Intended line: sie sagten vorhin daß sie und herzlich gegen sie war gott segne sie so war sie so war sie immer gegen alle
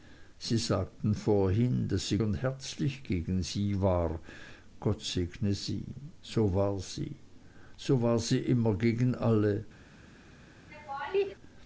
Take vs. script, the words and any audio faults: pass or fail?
fail